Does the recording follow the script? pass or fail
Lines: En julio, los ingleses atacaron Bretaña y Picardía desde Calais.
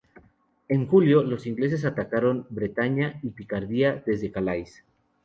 pass